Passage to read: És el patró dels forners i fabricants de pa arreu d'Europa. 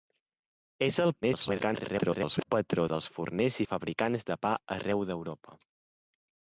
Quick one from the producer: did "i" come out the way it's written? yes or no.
yes